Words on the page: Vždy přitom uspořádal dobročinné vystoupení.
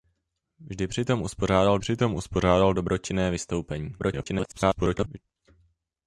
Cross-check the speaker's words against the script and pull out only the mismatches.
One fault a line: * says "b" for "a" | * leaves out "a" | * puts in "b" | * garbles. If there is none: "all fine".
* puts in "přitom uspořádal"
* garbles